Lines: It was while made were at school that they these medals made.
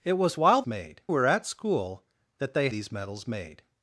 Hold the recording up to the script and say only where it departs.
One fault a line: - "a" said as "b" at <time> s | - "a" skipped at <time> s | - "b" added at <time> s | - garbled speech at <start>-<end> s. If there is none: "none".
none